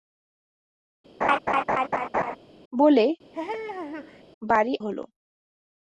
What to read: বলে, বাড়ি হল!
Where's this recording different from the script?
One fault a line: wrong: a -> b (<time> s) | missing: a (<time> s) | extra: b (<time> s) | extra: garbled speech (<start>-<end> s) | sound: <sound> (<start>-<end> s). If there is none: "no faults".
sound: laugh (1.2-2.4 s)
sound: laugh (3.3-4.2 s)